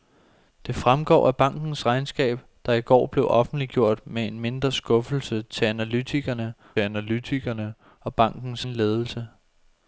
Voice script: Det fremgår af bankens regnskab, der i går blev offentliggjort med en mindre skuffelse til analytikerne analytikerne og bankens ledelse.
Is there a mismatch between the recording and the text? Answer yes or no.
no